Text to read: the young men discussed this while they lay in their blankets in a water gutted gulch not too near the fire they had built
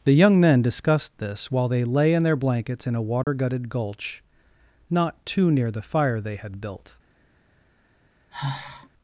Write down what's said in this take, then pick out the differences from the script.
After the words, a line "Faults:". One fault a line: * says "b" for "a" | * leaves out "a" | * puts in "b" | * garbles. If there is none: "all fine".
the young men discussed this while they lay in their blankets in a water gutted gulch not too near the fire they had built
Faults:
all fine